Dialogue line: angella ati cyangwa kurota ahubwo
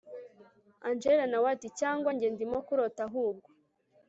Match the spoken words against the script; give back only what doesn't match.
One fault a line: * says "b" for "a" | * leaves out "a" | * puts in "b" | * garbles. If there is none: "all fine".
* puts in "nawe"
* puts in "njye ndimo"